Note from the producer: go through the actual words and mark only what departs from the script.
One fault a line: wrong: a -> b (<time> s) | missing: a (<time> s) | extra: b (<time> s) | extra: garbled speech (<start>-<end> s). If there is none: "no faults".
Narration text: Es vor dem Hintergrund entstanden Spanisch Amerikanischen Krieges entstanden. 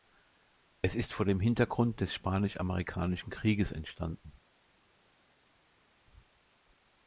extra: ist (0.9 s)
wrong: entstanden -> des (2.0 s)